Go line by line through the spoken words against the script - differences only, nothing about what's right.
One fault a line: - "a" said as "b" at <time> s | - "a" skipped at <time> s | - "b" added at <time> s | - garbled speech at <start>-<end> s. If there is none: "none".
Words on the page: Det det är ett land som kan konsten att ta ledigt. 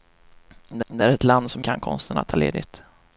none